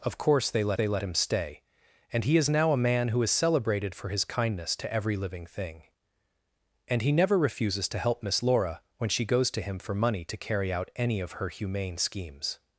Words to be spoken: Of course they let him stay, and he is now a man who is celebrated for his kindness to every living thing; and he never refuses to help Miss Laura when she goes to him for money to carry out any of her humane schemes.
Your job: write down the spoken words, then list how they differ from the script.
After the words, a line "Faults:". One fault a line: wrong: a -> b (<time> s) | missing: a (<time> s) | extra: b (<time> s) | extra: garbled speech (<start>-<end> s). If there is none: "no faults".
Of course they let they let him stay, and he is now a man who is celebrated for his kindness to every living thing; and he never refuses to help Miss Laura when she goes to him for money to carry out any of her humane schemes.
Faults:
extra: they let (0.7 s)